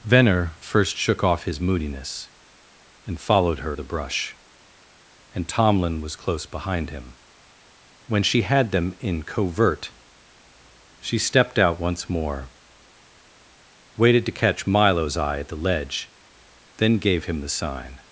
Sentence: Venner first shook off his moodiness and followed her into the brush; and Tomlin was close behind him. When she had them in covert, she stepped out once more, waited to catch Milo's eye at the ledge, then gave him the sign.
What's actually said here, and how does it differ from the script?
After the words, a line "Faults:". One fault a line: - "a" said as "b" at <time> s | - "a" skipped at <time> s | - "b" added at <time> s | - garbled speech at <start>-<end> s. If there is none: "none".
Venner first shook off his moodiness and followed her the brush; and Tomlin was close behind him. When she had them in covert, she stepped out once more, waited to catch Milo's eye at the ledge, then gave him the sign.
Faults:
- "into" skipped at 3.8 s